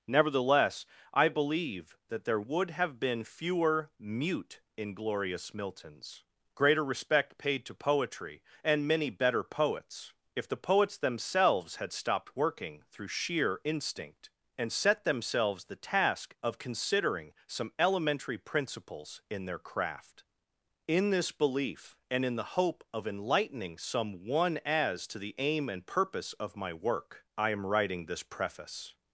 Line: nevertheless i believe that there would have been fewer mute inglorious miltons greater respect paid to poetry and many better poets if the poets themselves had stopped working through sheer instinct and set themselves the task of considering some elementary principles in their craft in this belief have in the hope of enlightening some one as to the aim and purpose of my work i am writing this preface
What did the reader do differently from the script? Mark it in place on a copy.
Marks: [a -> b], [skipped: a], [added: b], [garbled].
nevertheless i believe that there would have been fewer mute inglorious miltons greater respect paid to poetry and many better poets if the poets themselves had stopped working through sheer instinct and set themselves the task of considering some elementary principles in their craft in this belief [have -> and] in the hope of enlightening some one as to the aim and purpose of my work i am writing this preface